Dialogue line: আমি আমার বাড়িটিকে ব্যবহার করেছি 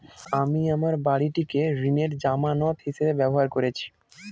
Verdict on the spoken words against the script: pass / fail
fail